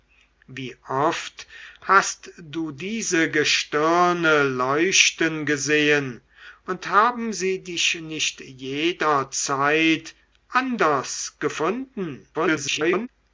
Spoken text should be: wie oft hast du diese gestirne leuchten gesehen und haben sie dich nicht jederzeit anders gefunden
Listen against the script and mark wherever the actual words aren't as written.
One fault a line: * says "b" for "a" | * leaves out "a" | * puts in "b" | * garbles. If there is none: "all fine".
* garbles